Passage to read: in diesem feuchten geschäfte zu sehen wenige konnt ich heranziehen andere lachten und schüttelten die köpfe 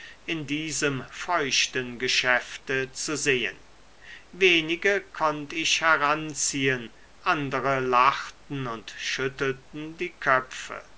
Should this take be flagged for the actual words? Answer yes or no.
no